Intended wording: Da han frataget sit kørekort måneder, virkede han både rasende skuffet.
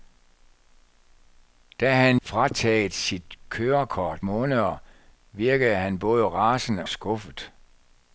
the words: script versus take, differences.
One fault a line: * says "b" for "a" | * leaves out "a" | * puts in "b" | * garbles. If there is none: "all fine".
all fine